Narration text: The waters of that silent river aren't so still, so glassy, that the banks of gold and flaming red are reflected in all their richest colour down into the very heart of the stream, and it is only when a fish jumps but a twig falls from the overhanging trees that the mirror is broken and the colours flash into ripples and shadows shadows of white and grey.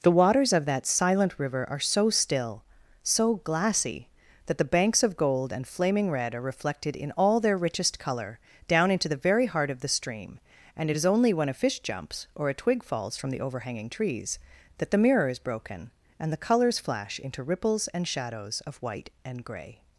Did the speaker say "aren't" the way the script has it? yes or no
no